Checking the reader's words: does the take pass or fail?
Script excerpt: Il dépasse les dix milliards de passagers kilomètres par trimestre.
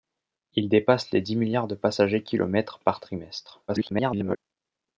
fail